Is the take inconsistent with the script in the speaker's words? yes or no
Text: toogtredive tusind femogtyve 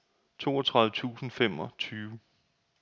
no